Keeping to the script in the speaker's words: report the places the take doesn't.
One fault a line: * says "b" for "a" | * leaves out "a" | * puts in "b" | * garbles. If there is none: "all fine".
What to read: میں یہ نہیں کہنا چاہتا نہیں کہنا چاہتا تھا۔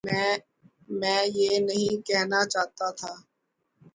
* leaves out "نہیں کہنا چاہتا"